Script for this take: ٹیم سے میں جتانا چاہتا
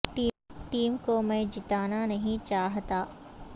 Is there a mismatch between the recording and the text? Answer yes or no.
yes